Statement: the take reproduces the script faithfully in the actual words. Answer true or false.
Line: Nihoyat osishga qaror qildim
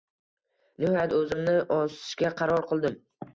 false